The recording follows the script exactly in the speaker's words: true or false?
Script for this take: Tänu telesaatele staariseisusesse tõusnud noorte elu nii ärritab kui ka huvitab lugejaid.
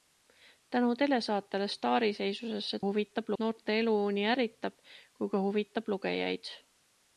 false